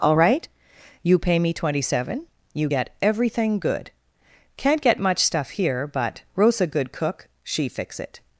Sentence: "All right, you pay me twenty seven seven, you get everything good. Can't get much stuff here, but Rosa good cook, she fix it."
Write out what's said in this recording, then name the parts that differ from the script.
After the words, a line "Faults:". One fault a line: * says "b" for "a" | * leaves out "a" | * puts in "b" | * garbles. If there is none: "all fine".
"All right, you pay me twenty seven, you get everything good. Can't get much stuff here, but Rosa good cook, she fix it."
Faults:
* leaves out "seven"